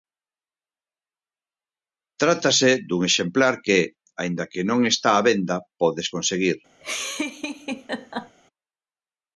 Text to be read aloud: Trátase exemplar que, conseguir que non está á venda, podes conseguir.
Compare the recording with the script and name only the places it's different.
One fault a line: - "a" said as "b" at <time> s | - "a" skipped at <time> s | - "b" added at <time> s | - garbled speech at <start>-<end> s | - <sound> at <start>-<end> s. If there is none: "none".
- "dun" added at 2.9 s
- "conseguir" said as "aínda" at 4.2 s
- laugh at 6.8-8.4 s